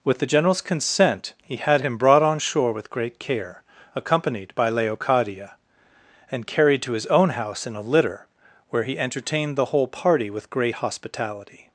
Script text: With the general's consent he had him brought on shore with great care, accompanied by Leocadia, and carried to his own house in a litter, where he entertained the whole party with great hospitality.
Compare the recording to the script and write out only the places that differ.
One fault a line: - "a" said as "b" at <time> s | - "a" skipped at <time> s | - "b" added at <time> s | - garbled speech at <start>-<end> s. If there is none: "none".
none